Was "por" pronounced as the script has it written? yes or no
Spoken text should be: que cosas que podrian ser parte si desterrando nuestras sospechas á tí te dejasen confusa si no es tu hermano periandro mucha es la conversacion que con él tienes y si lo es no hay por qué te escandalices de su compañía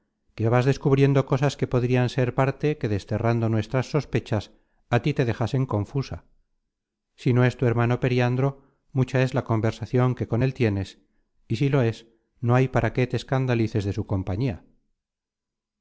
no